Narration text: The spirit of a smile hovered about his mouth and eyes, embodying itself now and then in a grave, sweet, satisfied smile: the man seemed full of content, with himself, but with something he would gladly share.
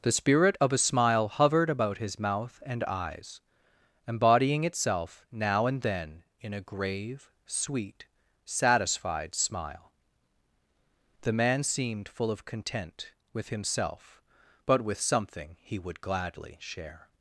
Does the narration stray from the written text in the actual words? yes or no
no